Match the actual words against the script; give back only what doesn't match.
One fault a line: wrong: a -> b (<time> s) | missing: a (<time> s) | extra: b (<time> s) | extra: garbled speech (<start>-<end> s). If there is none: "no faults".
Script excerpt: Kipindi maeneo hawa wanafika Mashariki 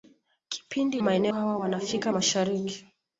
no faults